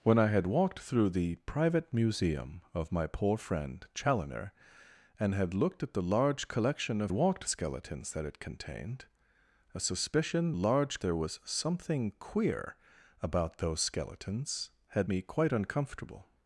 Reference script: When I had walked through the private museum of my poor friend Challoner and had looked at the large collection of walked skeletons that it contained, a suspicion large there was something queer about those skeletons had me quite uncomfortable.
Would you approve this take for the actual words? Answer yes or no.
yes